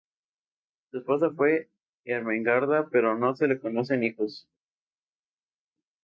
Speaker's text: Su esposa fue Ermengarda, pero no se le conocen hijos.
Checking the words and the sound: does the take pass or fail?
pass